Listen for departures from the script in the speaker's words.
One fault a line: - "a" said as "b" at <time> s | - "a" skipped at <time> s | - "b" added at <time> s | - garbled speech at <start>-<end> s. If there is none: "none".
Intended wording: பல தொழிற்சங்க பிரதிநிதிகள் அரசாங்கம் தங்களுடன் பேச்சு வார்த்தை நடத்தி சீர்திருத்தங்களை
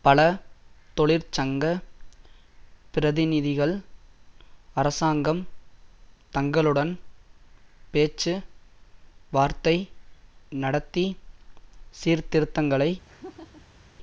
none